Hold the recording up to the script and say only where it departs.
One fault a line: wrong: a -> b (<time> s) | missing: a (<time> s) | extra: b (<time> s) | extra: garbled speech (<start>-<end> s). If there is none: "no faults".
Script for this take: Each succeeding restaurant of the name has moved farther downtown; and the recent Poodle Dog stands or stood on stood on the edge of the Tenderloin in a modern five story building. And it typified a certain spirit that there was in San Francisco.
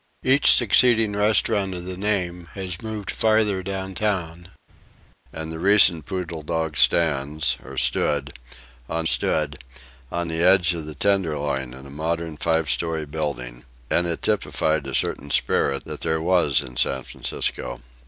no faults